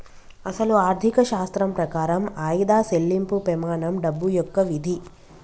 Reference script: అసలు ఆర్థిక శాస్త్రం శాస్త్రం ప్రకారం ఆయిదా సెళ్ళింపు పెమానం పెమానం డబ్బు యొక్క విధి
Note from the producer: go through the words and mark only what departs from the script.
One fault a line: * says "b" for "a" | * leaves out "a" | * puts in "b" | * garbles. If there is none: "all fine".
* leaves out "శాస్త్రం"
* leaves out "పెమానం"